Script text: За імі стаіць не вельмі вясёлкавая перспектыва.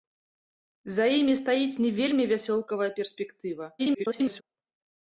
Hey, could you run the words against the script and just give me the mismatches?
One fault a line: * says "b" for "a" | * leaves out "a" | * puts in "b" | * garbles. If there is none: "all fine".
* garbles